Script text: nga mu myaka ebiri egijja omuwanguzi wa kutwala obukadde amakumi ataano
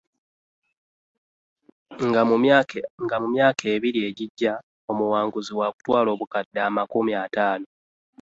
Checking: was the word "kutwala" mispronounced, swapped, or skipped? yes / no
no